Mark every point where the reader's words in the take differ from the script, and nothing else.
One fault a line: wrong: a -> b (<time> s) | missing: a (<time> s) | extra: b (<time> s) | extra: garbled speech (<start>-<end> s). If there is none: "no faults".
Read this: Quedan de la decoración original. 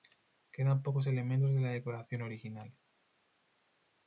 extra: pocos elementos (0.8 s)